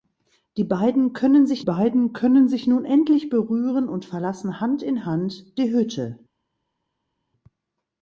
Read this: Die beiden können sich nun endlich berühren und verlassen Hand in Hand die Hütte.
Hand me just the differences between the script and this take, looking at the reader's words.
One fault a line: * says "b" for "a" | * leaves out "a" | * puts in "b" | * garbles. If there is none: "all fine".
* puts in "beiden können sich"